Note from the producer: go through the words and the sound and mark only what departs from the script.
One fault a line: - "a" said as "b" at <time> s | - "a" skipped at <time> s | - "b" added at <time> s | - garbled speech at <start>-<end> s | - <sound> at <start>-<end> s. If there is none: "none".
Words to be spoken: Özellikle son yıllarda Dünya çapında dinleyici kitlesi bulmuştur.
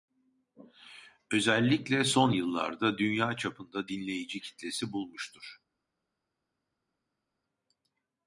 none